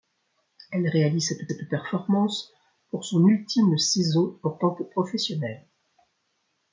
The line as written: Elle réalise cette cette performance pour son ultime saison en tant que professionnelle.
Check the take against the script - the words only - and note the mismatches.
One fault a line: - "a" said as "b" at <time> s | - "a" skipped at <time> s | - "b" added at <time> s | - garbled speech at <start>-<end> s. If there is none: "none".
none